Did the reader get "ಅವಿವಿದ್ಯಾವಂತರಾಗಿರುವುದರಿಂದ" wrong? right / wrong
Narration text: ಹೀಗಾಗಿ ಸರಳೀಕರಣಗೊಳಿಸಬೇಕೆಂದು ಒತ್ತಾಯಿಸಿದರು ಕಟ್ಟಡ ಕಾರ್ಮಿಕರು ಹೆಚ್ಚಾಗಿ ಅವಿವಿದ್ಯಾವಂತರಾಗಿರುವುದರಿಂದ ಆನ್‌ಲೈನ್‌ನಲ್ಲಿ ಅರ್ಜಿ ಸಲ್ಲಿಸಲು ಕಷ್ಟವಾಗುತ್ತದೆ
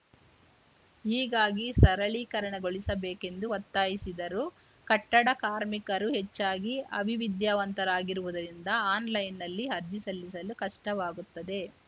right